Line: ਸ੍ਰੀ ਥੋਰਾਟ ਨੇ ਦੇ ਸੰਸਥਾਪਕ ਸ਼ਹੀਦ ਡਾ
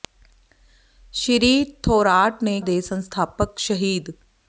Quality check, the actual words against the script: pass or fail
pass